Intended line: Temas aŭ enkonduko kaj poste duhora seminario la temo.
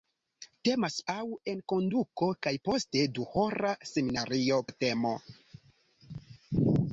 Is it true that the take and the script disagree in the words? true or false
false